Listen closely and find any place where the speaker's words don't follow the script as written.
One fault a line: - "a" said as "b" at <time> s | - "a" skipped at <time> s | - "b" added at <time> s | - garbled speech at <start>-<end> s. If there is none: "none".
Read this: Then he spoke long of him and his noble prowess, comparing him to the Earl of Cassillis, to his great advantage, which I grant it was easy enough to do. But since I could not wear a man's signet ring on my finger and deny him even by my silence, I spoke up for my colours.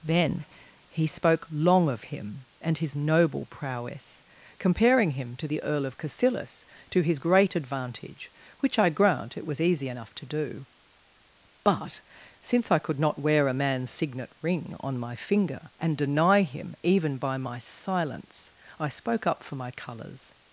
none